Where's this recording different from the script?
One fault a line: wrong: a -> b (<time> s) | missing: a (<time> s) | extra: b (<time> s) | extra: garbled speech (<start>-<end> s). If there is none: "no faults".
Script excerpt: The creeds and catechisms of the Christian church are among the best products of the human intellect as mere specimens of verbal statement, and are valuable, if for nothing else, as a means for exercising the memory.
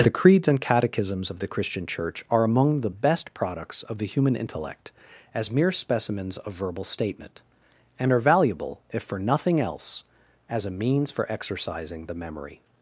no faults